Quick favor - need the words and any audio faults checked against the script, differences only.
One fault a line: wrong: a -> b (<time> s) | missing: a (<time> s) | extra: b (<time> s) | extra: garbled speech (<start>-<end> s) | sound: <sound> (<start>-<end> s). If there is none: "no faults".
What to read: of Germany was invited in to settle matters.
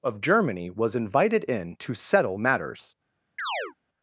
sound: chirp (3.4-3.7 s)